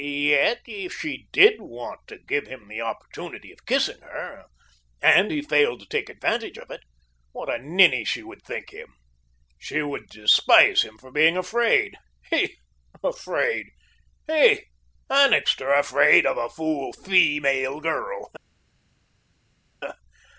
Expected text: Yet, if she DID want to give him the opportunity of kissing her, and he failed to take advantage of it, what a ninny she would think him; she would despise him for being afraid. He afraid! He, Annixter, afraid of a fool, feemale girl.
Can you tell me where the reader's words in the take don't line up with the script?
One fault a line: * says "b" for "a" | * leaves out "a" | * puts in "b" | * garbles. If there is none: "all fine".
all fine